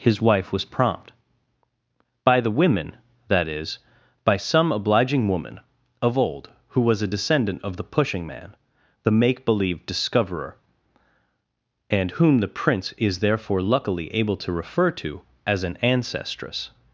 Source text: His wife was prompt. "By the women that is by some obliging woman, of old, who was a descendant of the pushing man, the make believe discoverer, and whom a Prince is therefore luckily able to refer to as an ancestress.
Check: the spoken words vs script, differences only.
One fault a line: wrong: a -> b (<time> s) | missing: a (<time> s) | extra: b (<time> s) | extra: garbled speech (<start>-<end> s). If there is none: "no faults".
wrong: a -> the (12.4 s)